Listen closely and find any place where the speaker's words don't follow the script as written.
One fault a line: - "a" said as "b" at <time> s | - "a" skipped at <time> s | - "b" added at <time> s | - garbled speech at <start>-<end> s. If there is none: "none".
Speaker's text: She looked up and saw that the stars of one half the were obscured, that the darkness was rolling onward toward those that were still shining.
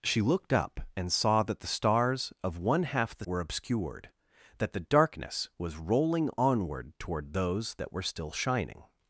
none